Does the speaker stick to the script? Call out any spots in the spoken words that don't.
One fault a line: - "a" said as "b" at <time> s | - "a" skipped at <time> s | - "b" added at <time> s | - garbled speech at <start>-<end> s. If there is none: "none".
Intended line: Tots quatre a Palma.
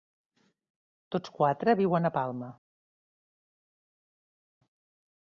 - "viuen" added at 1.8 s